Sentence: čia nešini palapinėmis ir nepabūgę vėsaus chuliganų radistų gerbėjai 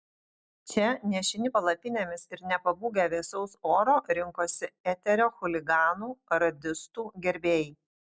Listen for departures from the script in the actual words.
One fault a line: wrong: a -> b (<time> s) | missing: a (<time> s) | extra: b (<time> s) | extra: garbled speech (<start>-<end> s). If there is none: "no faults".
extra: oro rinkosi eterio (3.8 s)